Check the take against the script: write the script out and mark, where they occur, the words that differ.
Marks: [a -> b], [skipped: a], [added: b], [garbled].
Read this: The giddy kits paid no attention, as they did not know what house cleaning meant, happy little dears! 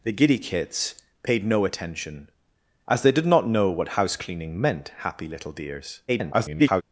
The giddy kits paid no attention, as they did not know what house cleaning meant, happy little dears! [garbled]